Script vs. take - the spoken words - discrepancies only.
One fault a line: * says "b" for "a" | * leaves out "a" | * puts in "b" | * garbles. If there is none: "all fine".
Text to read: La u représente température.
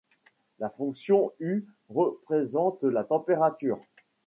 * puts in "fonction"
* puts in "la"